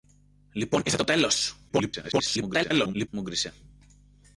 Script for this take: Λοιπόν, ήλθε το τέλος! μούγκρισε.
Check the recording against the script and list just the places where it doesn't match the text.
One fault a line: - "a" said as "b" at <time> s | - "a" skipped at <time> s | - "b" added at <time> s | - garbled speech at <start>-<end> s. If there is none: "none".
- garbled speech at 1.7-3.1 s